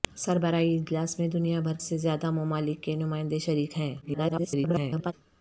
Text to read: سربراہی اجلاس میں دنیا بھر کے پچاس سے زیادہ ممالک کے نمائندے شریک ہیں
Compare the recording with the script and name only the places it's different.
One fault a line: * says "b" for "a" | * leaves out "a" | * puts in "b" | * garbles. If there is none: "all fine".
* leaves out "کے پچاس"
* garbles